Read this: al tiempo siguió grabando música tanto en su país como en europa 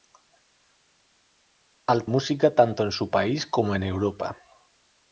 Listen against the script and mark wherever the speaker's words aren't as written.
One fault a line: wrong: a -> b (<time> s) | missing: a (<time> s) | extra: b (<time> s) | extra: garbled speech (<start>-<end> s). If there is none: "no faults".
missing: tiempo siguió grabando (2.1 s)